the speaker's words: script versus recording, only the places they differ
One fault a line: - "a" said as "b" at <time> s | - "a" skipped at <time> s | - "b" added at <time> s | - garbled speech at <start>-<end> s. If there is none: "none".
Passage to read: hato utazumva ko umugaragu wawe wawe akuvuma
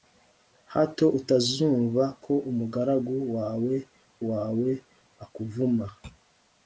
none